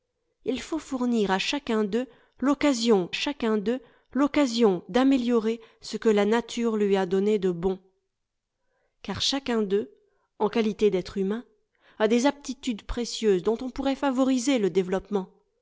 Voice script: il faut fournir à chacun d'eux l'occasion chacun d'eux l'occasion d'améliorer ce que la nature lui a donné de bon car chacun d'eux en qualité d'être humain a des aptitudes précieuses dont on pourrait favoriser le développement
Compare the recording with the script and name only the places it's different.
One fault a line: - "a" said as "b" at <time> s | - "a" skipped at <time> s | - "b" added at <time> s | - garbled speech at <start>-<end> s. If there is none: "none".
none